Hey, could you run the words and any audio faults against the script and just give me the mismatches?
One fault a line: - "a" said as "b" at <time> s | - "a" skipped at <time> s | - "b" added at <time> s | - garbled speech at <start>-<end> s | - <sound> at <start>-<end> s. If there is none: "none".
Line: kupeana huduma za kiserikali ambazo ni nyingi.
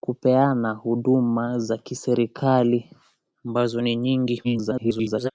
- garbled speech at 4.4-5.3 s